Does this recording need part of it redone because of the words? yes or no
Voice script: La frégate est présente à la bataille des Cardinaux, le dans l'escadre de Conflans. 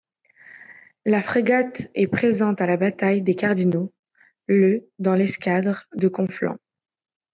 no